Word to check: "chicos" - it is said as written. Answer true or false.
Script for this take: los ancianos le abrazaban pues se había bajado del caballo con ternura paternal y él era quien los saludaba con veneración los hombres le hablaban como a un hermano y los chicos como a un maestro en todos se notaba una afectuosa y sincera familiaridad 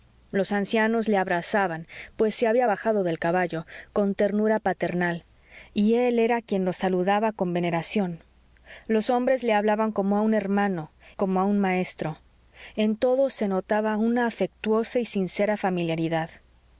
false